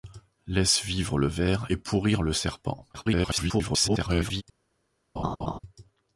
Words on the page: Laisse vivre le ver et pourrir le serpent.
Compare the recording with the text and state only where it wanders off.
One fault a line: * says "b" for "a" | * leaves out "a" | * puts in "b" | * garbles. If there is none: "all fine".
* garbles